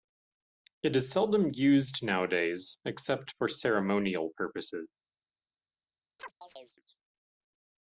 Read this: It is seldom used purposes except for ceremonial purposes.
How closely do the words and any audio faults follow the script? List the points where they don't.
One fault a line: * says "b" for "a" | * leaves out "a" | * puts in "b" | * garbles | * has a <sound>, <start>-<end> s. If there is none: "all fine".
* says "nowadays" for "purposes"
* has a chirp, 6.2-6.8 s